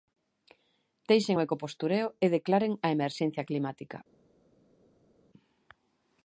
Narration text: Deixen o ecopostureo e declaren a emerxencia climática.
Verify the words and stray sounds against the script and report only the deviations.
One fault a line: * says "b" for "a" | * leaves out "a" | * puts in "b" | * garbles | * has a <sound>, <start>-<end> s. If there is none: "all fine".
all fine